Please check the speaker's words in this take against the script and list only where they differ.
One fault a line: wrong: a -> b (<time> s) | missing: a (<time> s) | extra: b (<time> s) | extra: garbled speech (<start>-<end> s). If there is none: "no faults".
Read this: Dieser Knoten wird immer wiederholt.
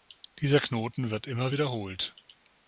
no faults